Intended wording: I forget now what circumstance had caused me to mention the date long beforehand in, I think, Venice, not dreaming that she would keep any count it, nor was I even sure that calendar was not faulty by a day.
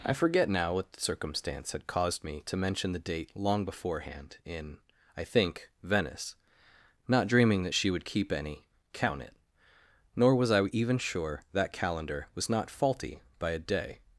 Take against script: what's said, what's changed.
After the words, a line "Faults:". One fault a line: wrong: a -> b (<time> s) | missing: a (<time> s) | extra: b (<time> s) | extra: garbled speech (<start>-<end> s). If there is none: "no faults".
I forget now what circumstance had caused me to mention the date long beforehand in, I think, Venice, not dreaming that she would keep any count it, nor was I even sure that calendar was not faulty by a day.
Faults:
no faults